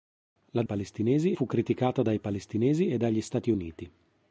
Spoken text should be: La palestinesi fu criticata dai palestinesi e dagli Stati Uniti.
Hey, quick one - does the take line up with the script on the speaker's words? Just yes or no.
yes